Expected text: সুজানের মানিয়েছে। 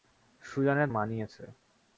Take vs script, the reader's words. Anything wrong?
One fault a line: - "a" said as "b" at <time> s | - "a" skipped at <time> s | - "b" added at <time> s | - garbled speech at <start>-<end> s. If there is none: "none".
none